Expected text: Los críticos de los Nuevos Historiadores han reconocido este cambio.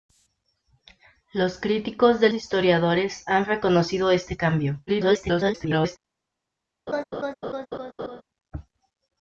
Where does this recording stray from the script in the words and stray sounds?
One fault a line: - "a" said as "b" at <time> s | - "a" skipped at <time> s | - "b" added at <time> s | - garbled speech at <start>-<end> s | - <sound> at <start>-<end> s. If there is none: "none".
- "los Nuevos" skipped at 2.3 s
- garbled speech at 4.9-6.0 s
- laugh at 6.9-8.2 s